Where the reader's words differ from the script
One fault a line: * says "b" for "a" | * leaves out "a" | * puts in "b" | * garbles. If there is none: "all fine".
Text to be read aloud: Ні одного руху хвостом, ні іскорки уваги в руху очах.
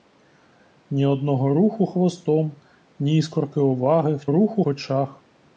all fine